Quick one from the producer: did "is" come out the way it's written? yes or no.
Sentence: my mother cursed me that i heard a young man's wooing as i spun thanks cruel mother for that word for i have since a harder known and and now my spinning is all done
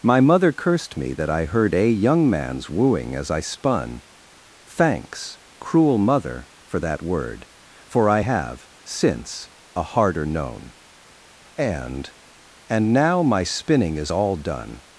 yes